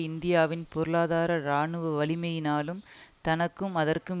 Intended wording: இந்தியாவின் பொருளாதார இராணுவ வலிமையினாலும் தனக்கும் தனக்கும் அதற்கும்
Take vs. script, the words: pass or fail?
fail